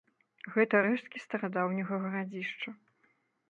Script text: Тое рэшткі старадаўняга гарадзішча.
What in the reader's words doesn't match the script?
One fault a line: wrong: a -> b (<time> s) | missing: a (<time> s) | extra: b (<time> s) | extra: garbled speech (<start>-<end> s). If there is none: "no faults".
wrong: Тое -> Гэта (0.6 s)